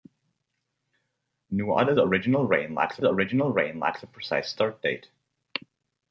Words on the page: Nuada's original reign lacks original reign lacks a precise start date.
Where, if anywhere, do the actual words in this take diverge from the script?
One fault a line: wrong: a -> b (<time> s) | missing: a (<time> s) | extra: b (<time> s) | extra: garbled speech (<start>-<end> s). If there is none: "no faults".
no faults